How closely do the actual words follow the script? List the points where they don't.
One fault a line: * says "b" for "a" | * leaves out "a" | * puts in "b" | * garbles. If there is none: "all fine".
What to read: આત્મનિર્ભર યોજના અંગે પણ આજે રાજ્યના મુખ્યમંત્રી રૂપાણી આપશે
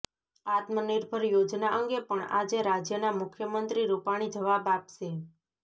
* puts in "જવાબ"